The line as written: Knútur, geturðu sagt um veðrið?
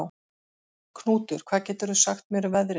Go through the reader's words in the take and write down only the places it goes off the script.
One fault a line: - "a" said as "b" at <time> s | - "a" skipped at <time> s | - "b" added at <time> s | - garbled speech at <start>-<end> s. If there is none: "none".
- "hvað" added at 1.5 s
- "mér" added at 2.4 s